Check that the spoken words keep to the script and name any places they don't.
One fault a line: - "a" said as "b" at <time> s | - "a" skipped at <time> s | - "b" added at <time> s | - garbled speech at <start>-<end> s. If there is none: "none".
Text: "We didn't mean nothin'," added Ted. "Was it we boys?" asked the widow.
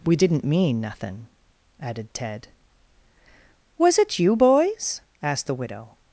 - "we" said as "you" at 4.2 s